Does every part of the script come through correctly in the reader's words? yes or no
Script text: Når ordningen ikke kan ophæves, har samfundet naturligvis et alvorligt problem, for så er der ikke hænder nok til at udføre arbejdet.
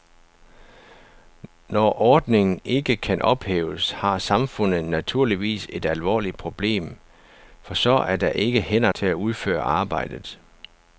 no